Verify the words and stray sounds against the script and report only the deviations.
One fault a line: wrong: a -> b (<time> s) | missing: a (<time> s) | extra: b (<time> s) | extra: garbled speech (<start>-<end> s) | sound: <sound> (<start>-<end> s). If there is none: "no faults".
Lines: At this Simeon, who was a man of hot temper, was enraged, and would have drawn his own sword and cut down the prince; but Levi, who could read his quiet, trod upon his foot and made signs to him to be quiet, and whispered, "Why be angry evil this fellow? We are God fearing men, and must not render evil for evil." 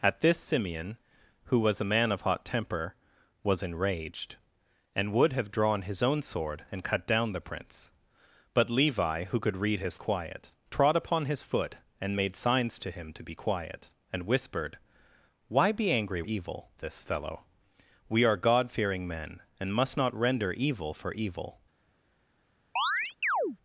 sound: chirp (22.8-23.6 s)